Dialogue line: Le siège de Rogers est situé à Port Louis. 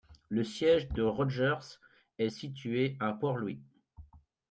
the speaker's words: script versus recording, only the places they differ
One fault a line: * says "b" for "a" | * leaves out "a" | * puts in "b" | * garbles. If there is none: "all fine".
all fine